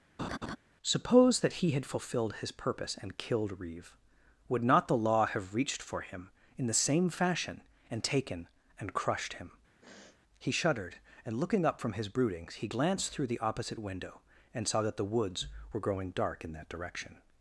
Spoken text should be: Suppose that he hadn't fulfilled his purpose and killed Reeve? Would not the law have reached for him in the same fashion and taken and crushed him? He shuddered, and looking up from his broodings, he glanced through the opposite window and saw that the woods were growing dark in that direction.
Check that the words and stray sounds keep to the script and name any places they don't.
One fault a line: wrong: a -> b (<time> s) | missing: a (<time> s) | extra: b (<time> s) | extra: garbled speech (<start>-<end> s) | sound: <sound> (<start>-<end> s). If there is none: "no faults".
sound: laugh (0.2-0.6 s)
wrong: hadn't -> had (1.7 s)
sound: sniff (9.8-10.2 s)